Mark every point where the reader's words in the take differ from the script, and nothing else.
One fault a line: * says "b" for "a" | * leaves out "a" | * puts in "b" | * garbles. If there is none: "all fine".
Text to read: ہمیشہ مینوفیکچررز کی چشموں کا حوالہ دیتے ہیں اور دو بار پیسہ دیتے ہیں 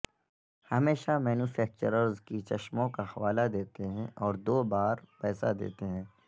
all fine